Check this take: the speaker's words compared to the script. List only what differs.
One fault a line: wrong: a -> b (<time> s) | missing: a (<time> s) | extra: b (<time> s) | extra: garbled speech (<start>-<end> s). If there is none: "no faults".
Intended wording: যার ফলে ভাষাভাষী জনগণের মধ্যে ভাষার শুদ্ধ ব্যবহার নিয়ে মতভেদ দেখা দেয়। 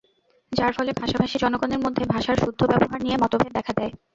no faults